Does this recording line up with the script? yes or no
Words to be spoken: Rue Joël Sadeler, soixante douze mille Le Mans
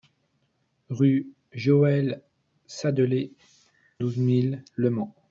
no